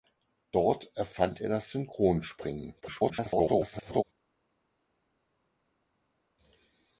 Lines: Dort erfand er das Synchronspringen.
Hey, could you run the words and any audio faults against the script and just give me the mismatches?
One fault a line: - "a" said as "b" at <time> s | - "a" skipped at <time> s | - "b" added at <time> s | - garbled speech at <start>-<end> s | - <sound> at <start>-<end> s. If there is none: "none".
- garbled speech at 2.8-4.0 s